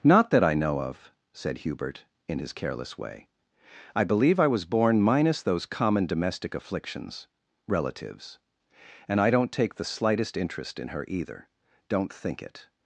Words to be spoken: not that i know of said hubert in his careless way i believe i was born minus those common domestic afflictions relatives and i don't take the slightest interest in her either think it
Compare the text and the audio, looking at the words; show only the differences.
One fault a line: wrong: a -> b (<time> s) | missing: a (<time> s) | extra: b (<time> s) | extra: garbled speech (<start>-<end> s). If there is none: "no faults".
extra: don't (11.9 s)